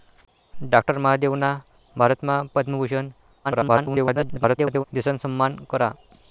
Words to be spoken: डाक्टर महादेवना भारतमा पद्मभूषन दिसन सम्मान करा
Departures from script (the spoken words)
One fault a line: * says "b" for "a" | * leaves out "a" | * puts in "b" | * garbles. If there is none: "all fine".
* garbles